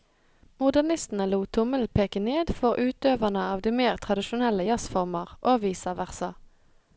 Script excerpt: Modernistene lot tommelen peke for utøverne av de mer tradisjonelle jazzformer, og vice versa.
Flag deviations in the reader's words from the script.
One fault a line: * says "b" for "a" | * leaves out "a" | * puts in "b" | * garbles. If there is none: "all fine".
* puts in "ned"